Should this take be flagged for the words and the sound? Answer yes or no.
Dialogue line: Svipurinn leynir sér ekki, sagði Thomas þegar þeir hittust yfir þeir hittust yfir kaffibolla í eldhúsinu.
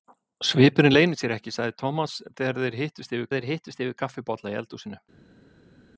no